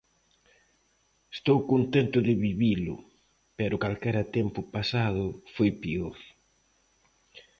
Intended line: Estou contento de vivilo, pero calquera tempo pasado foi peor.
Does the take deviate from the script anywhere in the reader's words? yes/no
no